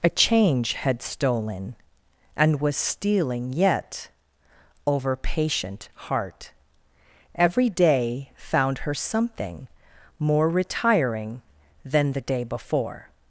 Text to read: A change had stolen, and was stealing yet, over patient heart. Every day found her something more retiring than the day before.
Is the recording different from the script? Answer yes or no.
no